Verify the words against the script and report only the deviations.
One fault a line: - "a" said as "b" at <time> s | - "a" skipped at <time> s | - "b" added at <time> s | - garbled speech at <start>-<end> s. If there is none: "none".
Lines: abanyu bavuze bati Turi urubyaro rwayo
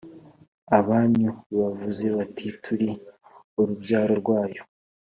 none